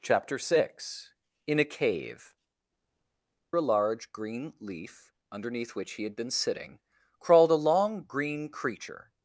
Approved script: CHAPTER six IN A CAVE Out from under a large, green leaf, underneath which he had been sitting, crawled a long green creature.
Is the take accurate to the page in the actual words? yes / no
no